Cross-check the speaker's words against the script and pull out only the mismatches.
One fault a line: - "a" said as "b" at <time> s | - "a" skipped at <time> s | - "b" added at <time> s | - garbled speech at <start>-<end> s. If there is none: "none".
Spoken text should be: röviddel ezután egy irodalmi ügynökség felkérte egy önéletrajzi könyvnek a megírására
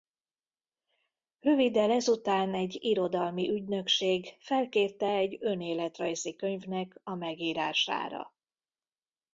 none